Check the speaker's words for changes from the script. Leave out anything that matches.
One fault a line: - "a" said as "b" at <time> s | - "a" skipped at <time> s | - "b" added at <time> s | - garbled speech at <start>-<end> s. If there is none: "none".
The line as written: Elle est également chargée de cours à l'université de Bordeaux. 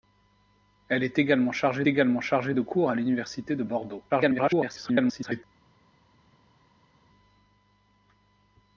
- "également chargée" added at 1.9 s
- garbled speech at 4.1-5.4 s